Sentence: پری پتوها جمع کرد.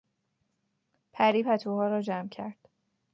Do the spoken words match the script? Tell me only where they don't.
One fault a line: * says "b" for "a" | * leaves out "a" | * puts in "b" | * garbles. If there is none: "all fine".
* puts in "را"